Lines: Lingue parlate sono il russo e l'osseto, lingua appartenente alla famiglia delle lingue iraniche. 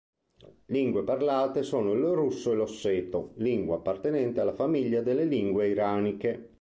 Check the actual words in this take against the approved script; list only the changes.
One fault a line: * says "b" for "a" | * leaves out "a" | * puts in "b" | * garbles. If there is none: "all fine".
all fine